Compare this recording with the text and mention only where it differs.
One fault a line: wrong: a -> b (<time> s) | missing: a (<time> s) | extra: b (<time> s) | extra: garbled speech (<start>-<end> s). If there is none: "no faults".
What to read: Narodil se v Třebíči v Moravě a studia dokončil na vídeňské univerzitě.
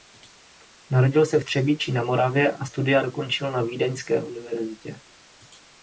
wrong: v -> na (1.9 s)